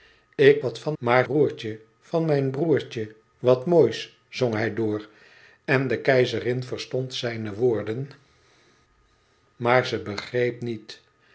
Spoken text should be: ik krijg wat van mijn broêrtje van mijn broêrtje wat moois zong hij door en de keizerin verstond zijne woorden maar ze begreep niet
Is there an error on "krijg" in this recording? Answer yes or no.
yes